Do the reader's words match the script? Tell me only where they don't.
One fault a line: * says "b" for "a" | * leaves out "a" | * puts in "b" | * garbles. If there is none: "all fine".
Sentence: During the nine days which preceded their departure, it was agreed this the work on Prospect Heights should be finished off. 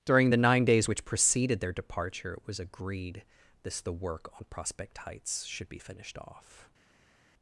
all fine